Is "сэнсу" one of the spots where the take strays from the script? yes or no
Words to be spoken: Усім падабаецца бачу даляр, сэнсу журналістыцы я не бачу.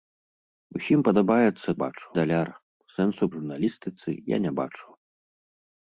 no